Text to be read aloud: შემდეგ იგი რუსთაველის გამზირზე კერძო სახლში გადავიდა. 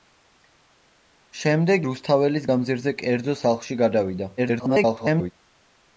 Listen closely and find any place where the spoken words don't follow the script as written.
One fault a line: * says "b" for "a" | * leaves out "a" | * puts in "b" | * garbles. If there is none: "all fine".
* leaves out "იგი"
* garbles